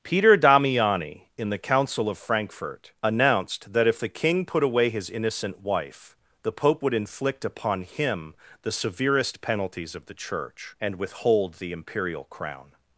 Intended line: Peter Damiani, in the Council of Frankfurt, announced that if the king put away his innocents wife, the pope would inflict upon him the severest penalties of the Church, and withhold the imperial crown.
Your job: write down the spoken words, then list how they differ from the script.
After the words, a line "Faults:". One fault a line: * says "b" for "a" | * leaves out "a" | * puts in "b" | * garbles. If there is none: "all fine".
Peter Damiani, in the Council of Frankfurt, announced that if the king put away his innocent wife, the pope would inflict upon him the severest penalties of the Church, and withhold the imperial crown.
Faults:
* says "innocent" for "innocents"